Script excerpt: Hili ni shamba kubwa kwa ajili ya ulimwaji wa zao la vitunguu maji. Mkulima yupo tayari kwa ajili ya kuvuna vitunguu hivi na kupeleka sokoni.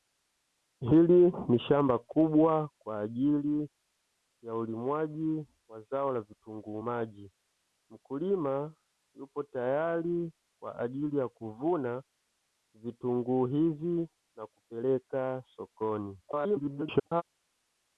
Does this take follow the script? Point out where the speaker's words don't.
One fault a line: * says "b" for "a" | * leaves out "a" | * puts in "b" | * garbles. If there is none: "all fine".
* garbles